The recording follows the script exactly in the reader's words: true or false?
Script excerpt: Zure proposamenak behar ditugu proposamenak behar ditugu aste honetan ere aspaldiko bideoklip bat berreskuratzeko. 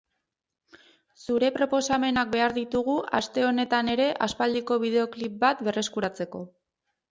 false